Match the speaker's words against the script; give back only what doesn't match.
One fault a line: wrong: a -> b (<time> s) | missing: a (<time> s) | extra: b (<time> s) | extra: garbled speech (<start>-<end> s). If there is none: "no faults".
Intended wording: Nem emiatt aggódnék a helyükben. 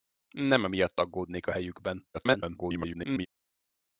extra: garbled speech (2.1-3.3 s)